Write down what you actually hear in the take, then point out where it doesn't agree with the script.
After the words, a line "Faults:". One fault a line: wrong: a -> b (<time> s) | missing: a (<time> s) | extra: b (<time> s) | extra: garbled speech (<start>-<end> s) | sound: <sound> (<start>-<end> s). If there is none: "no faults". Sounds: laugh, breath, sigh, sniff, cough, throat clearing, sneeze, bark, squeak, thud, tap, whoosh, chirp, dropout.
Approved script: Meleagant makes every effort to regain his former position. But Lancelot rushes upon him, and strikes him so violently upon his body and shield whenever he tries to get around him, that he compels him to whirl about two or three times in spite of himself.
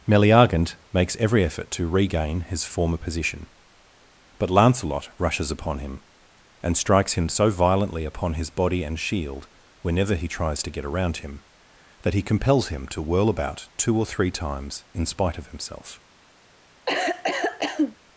Meleagant makes every effort to regain his former position. But Lancelot rushes upon him, and strikes him so violently upon his body and shield whenever he tries to get around him, that he compels him to whirl about two or three times in spite of himself.
Faults:
sound: cough (16.9-18.0 s)